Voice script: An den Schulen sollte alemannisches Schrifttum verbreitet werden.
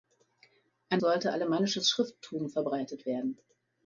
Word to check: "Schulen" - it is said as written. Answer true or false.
false